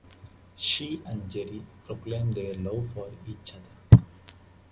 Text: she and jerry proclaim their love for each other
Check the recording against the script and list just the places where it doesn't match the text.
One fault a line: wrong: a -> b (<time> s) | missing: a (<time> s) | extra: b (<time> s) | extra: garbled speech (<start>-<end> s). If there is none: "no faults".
no faults